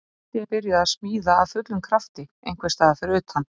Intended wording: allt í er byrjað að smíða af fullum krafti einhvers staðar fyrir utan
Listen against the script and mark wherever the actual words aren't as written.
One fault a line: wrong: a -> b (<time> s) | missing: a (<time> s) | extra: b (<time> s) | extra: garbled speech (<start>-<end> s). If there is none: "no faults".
no faults